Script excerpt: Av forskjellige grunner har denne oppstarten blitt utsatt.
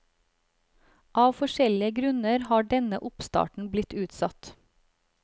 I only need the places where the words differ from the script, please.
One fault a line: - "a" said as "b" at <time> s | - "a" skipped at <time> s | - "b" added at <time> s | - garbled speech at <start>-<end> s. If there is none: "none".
none